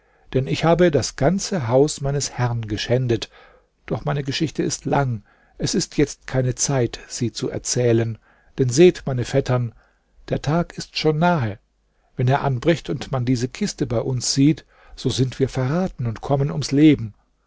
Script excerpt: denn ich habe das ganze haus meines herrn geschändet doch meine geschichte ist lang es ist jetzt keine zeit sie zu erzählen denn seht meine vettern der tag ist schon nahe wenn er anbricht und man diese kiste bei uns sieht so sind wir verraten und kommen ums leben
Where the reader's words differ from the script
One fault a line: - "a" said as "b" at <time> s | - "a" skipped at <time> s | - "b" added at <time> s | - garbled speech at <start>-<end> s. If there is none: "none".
none